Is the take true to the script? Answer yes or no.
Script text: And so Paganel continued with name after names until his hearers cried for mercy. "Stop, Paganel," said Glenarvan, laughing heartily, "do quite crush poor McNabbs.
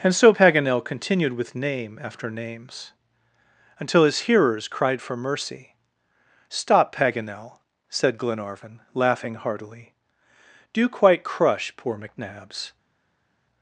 yes